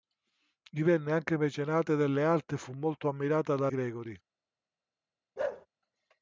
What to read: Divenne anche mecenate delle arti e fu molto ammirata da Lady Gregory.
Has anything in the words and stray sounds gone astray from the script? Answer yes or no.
yes